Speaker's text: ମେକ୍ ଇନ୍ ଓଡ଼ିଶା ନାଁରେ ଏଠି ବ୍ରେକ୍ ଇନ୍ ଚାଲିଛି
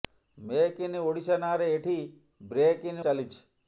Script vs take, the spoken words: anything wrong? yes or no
no